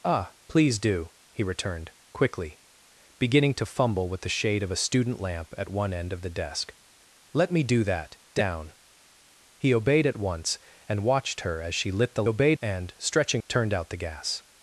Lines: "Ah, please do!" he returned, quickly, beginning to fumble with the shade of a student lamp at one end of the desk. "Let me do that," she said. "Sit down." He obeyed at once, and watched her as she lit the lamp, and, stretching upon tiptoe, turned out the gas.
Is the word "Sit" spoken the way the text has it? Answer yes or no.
no